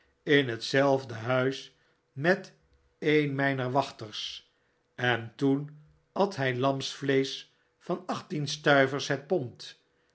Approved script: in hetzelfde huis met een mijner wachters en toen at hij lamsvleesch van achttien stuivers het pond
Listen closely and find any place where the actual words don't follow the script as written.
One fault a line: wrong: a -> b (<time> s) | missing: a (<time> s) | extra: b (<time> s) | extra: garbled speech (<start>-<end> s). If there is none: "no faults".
no faults